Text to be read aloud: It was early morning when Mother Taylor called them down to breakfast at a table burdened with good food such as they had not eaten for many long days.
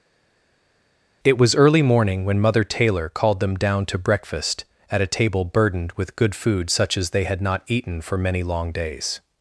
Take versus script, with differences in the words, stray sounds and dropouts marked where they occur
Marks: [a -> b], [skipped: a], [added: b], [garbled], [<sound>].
It was early morning when Mother Taylor called them down to breakfast at a table burdened with good food such as they had not eaten for many long days.